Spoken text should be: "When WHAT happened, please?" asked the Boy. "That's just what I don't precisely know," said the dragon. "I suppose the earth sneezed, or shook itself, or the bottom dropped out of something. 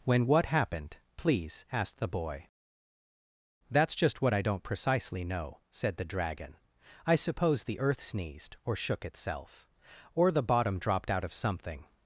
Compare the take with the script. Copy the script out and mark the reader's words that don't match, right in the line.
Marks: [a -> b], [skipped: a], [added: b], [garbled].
"When WHAT happened, please?" asked the Boy. "That's just what I don't precisely know," said the dragon. "I suppose the earth sneezed, or shook itself, or the bottom dropped out of something.